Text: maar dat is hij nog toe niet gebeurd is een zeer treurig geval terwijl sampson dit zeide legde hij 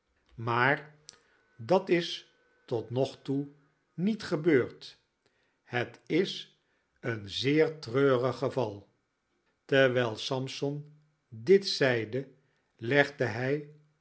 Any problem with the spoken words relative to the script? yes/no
yes